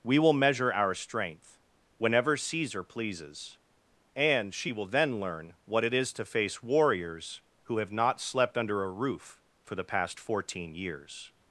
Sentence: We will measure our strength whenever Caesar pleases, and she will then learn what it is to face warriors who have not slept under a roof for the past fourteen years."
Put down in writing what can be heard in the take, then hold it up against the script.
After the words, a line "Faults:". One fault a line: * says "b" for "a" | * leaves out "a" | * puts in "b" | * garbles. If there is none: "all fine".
We will measure our strength whenever Caesar pleases, and she will then learn what it is to face warriors who have not slept under a roof for the past fourteen years."
Faults:
all fine